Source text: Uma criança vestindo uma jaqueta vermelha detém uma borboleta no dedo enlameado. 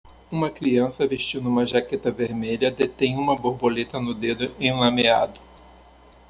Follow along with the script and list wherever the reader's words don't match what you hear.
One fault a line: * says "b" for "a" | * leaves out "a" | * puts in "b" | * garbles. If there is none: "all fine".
all fine